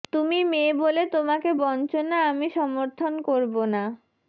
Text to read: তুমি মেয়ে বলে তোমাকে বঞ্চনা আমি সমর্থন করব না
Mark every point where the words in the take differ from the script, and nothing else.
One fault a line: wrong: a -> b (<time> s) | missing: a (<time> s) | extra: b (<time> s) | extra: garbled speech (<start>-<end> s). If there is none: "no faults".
no faults